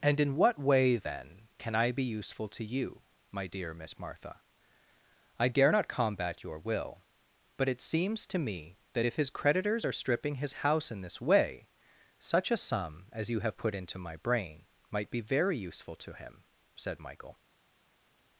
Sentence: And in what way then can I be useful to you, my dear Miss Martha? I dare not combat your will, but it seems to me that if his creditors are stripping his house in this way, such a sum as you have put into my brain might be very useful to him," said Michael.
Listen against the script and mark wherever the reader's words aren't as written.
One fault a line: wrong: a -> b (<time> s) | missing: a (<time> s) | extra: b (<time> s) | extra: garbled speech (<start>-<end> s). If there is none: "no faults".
no faults